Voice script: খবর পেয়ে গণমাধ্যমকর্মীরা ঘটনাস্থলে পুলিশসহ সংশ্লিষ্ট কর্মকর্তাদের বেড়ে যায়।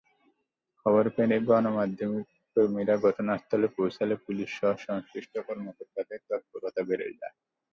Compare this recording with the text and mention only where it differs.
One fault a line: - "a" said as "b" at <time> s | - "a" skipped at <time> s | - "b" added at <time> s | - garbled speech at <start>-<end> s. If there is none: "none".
- "পৌঁছালে" added at 3.8 s
- "তৎপরতা" added at 6.3 s